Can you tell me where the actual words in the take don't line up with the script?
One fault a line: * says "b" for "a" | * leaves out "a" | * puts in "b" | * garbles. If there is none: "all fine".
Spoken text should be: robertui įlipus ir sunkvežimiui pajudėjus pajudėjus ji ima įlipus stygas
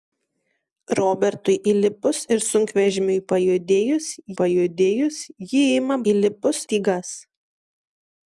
all fine